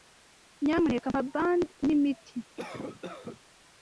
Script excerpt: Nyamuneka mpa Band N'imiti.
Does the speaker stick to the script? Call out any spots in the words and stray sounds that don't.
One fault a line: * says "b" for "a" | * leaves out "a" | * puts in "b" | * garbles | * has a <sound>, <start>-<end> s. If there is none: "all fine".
* has a cough, 2.6-3.4 s